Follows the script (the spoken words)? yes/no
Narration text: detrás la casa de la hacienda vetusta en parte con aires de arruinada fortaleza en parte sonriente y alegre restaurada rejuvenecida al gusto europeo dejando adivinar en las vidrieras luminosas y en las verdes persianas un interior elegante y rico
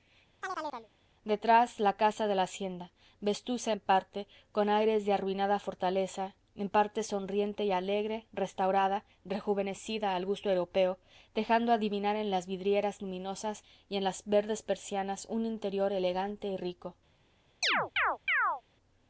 yes